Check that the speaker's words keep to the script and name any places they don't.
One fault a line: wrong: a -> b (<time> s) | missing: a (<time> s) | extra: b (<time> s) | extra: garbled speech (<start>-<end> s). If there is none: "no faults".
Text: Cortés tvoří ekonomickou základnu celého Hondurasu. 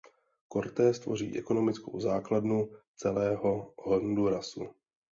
no faults